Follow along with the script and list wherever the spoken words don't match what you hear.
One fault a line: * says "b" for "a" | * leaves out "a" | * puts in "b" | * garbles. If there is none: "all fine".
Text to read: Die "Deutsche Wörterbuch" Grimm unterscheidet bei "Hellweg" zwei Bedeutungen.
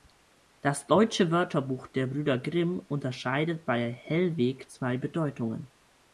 * says "Das" for "Die"
* puts in "der Brüder"